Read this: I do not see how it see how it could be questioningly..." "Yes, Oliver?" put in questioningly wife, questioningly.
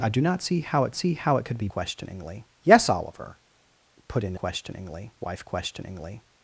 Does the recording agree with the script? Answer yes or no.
yes